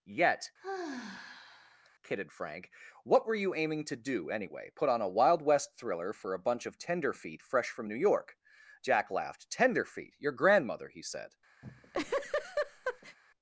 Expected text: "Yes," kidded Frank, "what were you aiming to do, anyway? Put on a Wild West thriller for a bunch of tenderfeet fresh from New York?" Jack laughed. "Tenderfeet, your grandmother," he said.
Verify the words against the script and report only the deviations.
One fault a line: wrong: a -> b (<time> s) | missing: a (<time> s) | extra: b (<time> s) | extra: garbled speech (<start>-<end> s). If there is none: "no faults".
wrong: Yes -> Yet (0.0 s)